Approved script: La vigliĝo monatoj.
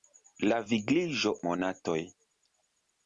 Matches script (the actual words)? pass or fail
pass